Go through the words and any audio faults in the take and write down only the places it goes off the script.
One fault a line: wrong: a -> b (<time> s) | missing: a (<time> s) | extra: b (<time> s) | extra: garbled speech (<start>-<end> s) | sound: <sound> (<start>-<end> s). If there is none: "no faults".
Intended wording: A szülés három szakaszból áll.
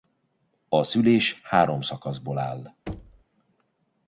sound: thud (2.9-3.2 s)